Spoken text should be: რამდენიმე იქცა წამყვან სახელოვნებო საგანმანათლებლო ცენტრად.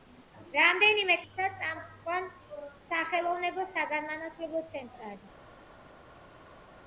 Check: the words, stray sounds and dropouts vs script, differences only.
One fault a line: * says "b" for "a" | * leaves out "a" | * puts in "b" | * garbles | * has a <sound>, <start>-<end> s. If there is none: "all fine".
all fine